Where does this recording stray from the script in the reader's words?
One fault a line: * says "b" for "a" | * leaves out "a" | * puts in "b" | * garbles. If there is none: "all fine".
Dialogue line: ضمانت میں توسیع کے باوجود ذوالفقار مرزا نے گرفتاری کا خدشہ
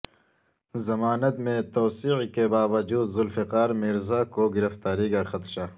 * says "کو" for "نے"